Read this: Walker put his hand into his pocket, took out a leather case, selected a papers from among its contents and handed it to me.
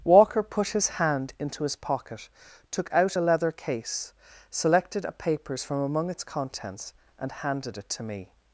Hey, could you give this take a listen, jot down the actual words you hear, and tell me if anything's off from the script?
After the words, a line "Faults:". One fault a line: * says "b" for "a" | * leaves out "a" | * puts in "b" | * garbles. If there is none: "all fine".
Walker put his hand into his pocket, took out a leather case, selected a papers from among its contents and handed it to me.
Faults:
all fine